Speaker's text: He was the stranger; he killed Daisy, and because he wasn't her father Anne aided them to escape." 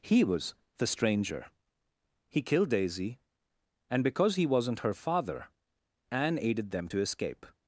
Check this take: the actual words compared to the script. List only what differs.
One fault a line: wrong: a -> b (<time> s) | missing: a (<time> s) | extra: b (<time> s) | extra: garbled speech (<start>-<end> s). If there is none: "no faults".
no faults